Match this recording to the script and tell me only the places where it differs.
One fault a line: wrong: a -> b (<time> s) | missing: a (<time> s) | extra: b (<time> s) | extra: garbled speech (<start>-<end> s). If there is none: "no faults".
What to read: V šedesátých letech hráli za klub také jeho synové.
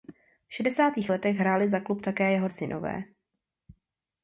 no faults